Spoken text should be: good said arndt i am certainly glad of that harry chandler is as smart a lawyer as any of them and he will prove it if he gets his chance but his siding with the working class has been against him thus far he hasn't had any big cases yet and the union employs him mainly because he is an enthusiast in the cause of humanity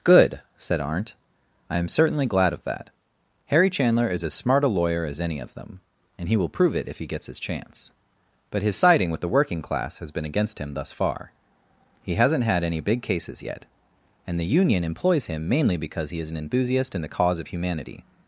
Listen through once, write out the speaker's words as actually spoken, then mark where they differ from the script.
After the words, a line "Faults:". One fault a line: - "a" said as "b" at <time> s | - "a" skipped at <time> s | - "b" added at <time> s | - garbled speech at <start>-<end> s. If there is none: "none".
good said arndt i am certainly glad of that harry chandler is as smart a lawyer as any of them and he will prove it if he gets his chance but his siding with the working class has been against him thus far he hasn't had any big cases yet and the union employs him mainly because he is an enthusiast in the cause of humanity
Faults:
none